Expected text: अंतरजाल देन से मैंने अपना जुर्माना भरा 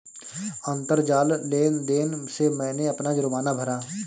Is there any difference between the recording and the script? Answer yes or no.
yes